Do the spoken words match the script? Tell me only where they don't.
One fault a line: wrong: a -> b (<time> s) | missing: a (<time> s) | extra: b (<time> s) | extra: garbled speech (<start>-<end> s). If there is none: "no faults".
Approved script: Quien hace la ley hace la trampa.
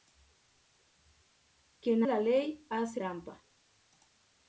missing: hace (2.0 s)
missing: la (3.0 s)